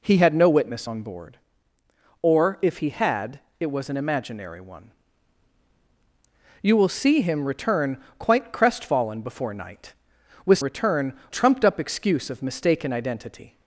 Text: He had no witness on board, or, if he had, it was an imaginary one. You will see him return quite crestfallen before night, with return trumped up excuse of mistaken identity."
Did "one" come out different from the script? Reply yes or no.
no